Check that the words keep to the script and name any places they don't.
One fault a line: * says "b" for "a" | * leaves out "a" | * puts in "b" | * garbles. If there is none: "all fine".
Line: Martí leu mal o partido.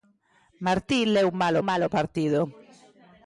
* puts in "mal"